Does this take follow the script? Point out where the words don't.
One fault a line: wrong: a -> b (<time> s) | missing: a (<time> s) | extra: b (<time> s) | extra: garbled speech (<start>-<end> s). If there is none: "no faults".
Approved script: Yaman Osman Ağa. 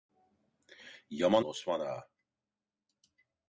no faults